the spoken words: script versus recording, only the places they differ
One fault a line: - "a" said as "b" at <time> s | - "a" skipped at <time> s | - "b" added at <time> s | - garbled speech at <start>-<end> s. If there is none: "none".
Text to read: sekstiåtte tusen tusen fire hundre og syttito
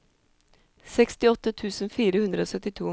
- "tusen" skipped at 1.9 s